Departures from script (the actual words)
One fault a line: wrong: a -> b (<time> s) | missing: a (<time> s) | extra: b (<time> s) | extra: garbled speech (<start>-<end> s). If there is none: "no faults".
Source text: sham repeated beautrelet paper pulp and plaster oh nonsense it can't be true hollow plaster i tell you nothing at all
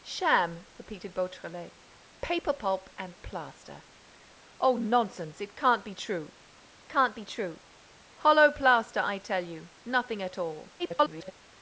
extra: can't be true (6.9 s)
extra: garbled speech (10.8-11.3 s)